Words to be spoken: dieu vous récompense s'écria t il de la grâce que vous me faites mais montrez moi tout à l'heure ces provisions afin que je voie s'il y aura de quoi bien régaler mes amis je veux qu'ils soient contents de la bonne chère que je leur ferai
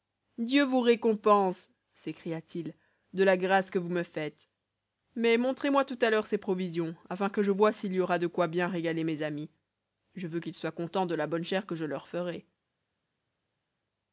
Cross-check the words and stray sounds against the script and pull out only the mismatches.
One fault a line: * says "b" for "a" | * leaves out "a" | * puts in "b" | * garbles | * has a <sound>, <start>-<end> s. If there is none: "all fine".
all fine